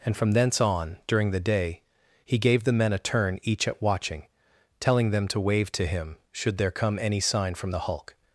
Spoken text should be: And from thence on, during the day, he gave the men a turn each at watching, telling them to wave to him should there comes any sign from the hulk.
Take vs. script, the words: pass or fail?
fail